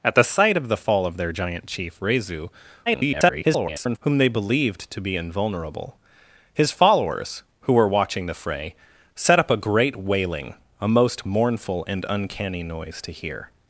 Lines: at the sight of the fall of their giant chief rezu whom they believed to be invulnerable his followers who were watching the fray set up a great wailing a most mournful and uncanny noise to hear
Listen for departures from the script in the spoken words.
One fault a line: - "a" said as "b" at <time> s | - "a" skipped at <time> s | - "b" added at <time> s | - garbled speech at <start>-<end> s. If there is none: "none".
- garbled speech at 2.9-4.0 s